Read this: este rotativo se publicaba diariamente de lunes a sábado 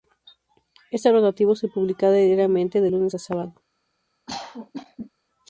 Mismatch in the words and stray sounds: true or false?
true